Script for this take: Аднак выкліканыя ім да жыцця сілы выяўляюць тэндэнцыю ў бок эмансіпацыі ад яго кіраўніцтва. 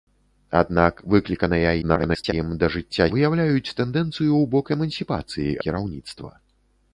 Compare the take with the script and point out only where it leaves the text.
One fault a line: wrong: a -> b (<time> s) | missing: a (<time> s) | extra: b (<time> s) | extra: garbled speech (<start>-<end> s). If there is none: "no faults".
extra: garbled speech (1.8-2.3 s)
missing: сілы (3.1 s)
missing: ад яго (5.6 s)